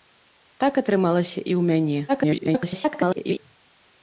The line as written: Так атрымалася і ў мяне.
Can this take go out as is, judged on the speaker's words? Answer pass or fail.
fail